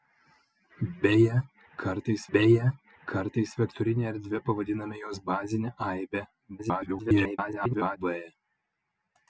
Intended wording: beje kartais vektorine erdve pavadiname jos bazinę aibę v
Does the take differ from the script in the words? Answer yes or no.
yes